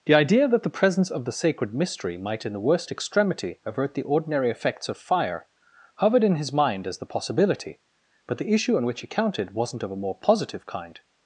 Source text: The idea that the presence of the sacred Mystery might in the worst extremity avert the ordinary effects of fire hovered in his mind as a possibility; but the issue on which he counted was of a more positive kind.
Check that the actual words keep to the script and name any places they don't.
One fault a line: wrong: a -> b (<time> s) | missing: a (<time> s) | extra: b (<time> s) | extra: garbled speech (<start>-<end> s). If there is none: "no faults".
wrong: a -> the (7.0 s)
wrong: was -> wasn't (9.5 s)